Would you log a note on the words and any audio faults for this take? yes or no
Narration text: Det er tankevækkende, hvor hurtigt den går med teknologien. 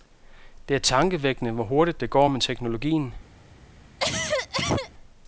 yes